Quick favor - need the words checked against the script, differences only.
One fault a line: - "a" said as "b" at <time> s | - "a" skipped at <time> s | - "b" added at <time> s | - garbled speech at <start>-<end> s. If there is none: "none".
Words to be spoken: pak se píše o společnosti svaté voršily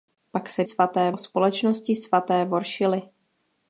- "píše" said as "svaté" at 0.6 s